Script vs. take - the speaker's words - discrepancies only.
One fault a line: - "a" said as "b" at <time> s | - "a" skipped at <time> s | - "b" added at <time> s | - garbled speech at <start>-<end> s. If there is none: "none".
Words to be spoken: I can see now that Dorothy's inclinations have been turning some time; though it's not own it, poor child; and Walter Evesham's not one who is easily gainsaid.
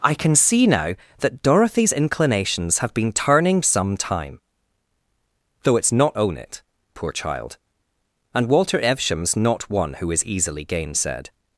none